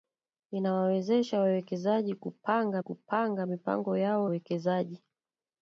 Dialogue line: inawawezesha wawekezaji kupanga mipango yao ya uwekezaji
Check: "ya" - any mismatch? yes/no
yes